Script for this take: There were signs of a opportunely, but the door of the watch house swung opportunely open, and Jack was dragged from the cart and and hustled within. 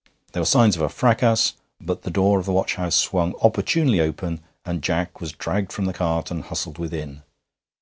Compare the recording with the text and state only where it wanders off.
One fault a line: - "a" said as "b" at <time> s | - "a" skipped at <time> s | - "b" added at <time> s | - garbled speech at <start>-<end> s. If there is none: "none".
- "opportunely" said as "fracas" at 0.9 s
- "and" skipped at 6.4 s